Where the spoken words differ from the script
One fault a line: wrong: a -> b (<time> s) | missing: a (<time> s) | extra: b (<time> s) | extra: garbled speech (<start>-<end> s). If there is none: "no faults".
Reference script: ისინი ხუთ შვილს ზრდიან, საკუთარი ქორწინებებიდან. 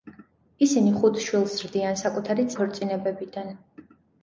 no faults